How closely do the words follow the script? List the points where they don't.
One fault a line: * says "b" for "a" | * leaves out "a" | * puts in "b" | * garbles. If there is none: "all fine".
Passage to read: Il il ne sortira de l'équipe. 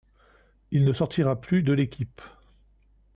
* leaves out "il"
* puts in "plus"